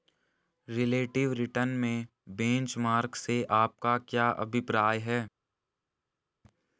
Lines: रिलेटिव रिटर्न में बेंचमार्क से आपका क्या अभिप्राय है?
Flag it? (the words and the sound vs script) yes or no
no